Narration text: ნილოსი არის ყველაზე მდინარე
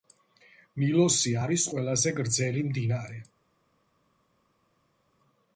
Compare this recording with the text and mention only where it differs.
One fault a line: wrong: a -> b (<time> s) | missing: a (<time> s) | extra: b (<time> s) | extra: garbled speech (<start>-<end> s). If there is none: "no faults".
extra: გრძელი (2.2 s)